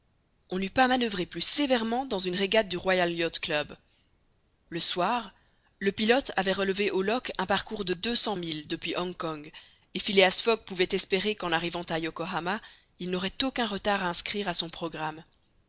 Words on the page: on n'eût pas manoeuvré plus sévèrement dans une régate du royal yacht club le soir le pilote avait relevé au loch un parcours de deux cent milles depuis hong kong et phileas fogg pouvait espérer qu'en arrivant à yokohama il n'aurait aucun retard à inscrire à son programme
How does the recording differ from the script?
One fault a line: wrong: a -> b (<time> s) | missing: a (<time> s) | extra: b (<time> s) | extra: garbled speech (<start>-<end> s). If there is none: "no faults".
no faults